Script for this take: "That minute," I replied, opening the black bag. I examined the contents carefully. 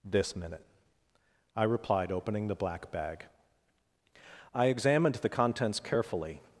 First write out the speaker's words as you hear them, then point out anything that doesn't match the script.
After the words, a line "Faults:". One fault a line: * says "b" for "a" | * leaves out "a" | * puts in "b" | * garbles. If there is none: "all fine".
"This minute," I replied, opening the black bag. I examined the contents carefully.
Faults:
* says "This" for "That"